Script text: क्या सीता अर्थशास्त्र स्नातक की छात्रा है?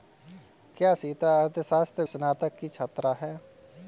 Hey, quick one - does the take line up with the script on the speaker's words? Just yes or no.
yes